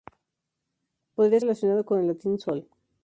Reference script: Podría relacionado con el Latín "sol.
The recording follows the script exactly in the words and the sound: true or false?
true